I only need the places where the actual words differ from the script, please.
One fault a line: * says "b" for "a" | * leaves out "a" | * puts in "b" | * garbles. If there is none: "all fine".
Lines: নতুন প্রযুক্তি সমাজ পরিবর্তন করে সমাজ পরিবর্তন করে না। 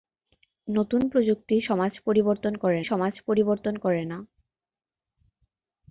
all fine